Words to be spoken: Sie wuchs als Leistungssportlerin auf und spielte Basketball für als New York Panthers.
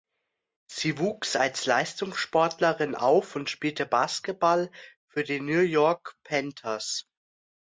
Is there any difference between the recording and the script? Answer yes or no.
yes